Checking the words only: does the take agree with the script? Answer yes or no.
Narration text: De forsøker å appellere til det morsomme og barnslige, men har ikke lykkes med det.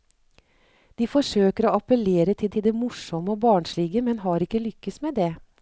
no